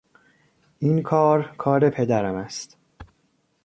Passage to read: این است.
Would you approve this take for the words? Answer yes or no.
no